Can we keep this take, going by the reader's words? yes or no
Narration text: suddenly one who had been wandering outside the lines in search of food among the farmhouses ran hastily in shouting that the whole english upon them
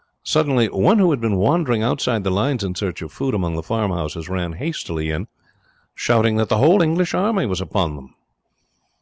no